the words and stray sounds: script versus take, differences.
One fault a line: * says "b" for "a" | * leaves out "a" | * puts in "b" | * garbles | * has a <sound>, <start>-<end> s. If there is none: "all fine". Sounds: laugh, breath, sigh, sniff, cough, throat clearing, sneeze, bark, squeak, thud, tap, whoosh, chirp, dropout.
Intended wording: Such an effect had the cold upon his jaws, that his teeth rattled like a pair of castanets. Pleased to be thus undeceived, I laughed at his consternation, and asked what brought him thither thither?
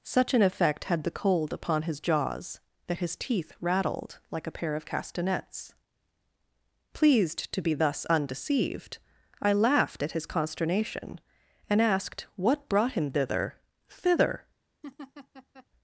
* has a laugh, 14.8-15.7 s